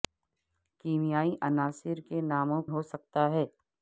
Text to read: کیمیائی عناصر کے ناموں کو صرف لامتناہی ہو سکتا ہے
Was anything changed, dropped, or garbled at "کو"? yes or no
yes